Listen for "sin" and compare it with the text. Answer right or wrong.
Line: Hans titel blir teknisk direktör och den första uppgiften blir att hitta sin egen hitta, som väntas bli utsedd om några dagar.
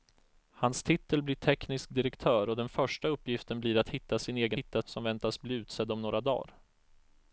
right